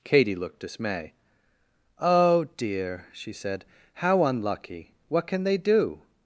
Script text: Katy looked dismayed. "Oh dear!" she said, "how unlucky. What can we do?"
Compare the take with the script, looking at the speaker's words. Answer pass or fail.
fail